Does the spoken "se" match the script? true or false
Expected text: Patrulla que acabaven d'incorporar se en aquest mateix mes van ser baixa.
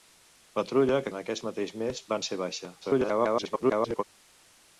false